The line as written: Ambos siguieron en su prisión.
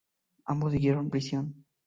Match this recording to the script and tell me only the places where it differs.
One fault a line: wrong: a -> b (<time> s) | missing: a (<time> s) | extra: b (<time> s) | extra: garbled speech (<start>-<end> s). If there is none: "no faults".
missing: en su (1.1 s)